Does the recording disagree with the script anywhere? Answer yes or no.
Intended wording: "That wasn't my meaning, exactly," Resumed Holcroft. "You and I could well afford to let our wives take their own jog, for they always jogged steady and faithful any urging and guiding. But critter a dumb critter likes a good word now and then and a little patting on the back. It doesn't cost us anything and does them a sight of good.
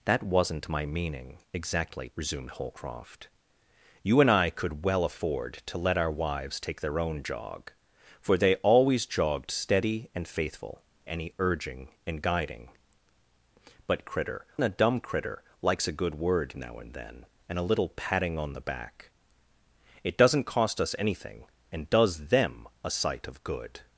no